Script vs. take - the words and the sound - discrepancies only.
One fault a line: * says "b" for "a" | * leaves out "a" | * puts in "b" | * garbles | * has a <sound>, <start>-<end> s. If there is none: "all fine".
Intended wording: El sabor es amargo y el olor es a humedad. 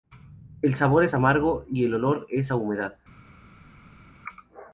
all fine